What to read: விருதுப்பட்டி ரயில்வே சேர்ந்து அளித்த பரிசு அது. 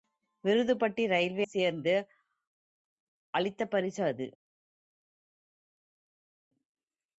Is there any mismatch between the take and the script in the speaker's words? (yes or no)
no